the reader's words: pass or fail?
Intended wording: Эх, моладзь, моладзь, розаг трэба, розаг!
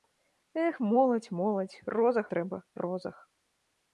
pass